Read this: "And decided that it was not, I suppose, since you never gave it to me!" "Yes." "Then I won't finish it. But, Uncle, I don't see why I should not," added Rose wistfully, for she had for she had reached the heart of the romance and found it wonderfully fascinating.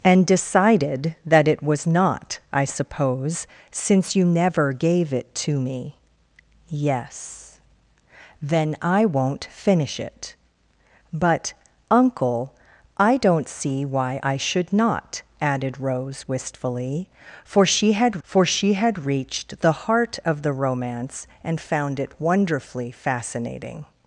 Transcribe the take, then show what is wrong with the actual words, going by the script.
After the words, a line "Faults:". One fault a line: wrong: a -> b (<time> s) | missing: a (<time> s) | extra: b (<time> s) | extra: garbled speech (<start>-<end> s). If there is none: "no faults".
"And decided that it was not, I suppose, since you never gave it to me!" "Yes." "Then I won't finish it. But, Uncle, I don't see why I should not," added Rose wistfully, for she had for she had reached the heart of the romance and found it wonderfully fascinating.
Faults:
no faults